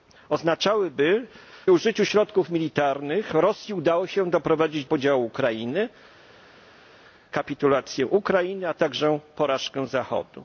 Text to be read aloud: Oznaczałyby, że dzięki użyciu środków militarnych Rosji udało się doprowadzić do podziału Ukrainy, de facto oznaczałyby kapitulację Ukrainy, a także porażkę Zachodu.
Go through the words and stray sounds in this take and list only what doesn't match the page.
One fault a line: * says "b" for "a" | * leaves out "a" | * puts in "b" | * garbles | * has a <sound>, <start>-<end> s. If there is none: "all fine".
* leaves out "że dzięki"
* leaves out "do"
* leaves out "de facto oznaczałyby"